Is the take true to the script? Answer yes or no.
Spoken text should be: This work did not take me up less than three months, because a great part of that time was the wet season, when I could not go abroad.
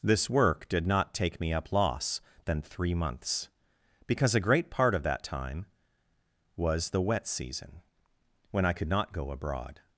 no